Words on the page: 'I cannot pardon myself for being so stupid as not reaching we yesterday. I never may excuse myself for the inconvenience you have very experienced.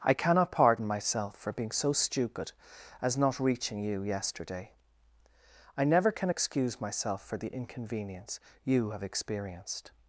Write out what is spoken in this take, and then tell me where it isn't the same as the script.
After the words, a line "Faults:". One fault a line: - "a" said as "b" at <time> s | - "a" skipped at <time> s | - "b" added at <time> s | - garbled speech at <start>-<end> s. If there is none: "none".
'I cannot pardon myself for being so stupid as not reaching you yesterday. I never can excuse myself for the inconvenience you have experienced.
Faults:
- "we" said as "you" at 3.8 s
- "may" said as "can" at 6.1 s
- "very" skipped at 9.0 s